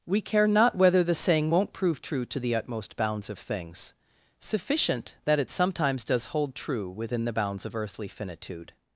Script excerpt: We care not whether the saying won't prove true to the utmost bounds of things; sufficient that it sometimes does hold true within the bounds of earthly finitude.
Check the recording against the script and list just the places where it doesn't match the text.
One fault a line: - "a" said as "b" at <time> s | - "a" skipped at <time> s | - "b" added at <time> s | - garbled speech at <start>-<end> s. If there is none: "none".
none